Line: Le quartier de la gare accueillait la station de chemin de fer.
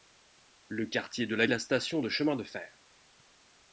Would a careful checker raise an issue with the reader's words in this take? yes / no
yes